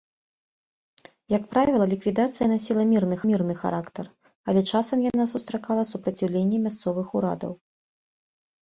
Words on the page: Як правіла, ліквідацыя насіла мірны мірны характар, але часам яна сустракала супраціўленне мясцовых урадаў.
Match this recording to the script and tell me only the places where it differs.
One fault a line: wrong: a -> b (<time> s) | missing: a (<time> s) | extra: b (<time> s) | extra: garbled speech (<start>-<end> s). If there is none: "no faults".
no faults